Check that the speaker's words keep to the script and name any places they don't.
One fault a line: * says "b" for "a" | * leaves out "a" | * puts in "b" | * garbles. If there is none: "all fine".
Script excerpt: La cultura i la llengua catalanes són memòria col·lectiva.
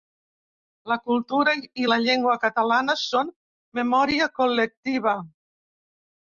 all fine